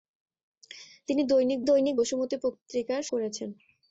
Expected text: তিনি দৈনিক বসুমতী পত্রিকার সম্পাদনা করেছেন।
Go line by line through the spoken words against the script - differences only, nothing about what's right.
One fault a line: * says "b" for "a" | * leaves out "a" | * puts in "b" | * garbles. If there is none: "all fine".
* puts in "দৈনিক"
* leaves out "সম্পাদনা"